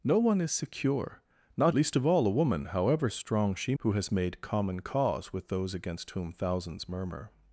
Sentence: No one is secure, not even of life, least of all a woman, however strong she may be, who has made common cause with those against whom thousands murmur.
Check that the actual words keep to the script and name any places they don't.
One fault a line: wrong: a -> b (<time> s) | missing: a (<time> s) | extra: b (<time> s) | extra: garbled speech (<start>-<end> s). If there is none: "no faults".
missing: even of life (1.8 s)
missing: may be (3.7 s)